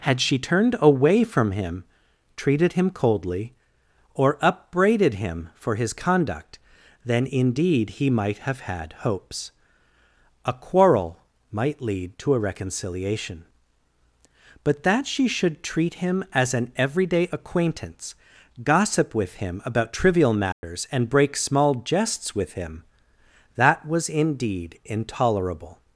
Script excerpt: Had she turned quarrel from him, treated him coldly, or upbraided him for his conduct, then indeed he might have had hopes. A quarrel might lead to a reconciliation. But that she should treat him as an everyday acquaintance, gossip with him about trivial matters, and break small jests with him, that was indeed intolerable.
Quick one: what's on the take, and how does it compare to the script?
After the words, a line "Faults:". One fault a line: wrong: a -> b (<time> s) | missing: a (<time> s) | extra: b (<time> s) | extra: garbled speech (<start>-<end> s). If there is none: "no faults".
Had she turned away from him, treated him coldly, or upbraided him for his conduct, then indeed he might have had hopes. A quarrel might lead to a reconciliation. But that she should treat him as an everyday acquaintance, gossip with him about trivial matters, and break small jests with him, that was indeed intolerable.
Faults:
wrong: quarrel -> away (0.8 s)